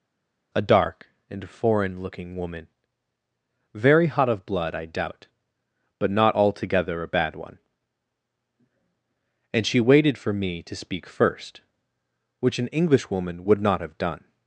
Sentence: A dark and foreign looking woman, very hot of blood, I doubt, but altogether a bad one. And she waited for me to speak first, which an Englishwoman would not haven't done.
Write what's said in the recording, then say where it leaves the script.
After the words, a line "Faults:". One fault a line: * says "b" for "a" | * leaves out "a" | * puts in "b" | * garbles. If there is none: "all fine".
A dark and foreign looking woman, very hot of blood, I doubt, but not altogether a bad one. And she waited for me to speak first, which an Englishwoman would not have done.
Faults:
* puts in "not"
* says "have" for "haven't"